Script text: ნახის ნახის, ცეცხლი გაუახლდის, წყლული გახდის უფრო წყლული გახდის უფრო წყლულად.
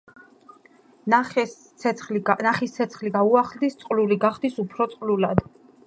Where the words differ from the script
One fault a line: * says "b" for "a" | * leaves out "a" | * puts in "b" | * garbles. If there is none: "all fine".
* leaves out "ნახის"
* leaves out "წყლული გახდის უფრო"